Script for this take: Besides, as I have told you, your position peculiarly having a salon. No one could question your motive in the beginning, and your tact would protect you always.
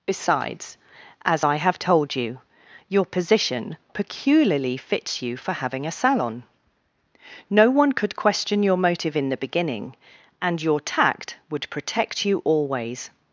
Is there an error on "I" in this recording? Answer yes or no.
no